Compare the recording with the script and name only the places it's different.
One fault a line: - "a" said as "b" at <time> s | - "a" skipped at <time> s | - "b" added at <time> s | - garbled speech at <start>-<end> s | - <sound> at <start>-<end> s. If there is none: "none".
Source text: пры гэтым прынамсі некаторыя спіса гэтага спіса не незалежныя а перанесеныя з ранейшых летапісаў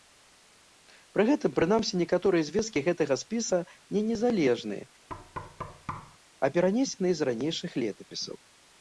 - "спіса" said as "звесткі" at 2.5 s
- thud at 5.1-6.2 s